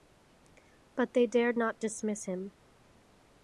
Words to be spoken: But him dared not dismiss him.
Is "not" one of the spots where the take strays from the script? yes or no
no